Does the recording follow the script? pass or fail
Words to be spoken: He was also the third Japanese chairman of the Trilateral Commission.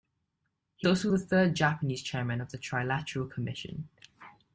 fail